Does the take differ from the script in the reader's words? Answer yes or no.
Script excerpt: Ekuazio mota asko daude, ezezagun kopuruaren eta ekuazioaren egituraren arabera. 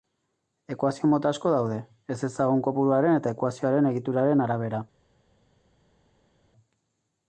no